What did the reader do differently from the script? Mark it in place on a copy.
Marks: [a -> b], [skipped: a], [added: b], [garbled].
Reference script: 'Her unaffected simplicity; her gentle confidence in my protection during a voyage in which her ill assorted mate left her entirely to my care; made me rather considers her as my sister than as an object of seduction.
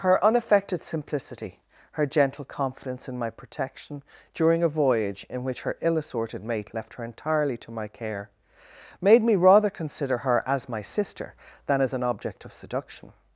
'Her unaffected simplicity; her gentle confidence in my protection during a voyage in which her ill assorted mate left her entirely to my care; made me rather [considers -> consider] her as my sister than as an object of seduction.